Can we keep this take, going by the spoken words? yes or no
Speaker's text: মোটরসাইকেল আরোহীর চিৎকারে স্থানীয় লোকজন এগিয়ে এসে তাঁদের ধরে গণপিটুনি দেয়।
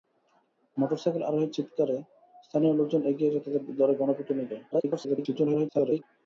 no